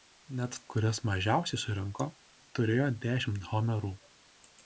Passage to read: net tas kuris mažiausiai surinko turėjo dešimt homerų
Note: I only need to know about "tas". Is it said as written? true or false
false